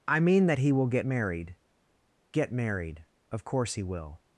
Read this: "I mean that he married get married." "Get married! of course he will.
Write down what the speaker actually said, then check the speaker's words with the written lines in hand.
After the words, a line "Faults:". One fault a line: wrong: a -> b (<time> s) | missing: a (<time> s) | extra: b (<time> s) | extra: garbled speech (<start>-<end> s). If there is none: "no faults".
"I mean that he will get married." "Get married! of course he will.
Faults:
wrong: married -> will (0.7 s)